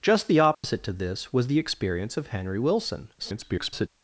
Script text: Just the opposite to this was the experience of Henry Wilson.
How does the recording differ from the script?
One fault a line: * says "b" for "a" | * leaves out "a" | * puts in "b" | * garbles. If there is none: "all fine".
* garbles